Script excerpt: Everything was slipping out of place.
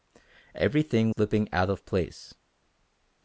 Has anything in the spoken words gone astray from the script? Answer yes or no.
yes